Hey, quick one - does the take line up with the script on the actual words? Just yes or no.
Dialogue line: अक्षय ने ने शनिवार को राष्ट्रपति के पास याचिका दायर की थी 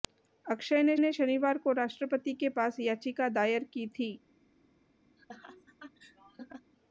yes